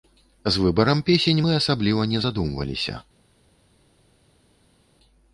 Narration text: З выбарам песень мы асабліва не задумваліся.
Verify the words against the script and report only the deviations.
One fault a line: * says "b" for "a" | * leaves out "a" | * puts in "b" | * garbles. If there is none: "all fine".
all fine